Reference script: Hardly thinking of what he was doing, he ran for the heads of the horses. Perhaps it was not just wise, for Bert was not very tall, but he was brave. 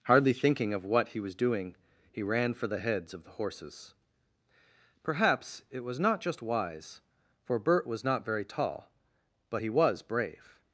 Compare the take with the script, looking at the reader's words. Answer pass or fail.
pass